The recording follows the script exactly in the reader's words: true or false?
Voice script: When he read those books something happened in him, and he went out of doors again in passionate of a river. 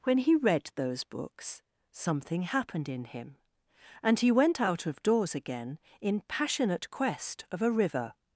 false